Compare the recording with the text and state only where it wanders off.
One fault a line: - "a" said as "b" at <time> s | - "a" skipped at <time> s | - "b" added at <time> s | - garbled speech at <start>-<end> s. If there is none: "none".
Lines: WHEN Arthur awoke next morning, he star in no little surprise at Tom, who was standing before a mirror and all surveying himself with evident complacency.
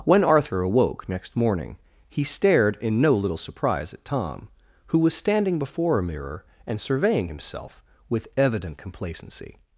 - "star" said as "stared" at 2.2 s
- "all" skipped at 6.8 s